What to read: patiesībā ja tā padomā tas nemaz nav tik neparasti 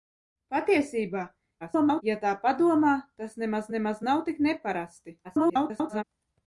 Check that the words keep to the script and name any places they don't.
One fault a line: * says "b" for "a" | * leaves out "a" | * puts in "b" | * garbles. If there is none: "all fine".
* garbles
* puts in "nemaz"
* garbles